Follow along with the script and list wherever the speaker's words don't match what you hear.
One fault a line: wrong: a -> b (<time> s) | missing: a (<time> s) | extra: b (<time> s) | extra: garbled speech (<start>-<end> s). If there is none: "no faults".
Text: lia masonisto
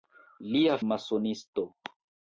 no faults